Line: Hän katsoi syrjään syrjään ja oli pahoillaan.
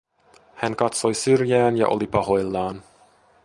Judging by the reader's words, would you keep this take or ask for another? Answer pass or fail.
fail